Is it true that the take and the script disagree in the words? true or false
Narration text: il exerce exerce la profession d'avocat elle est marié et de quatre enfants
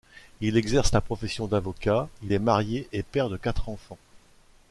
true